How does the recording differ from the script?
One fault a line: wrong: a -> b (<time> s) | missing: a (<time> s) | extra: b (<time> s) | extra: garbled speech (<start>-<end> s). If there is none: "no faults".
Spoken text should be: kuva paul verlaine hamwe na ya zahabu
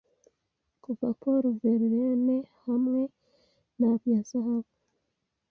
no faults